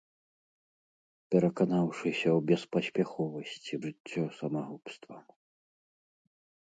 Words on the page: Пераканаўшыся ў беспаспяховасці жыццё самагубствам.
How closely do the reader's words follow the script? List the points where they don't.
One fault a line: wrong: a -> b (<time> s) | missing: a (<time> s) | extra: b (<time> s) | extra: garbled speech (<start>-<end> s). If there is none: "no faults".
no faults